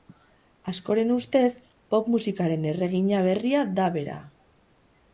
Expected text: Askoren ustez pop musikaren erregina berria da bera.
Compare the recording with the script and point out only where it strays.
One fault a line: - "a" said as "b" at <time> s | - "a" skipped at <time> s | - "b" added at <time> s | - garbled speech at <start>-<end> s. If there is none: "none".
none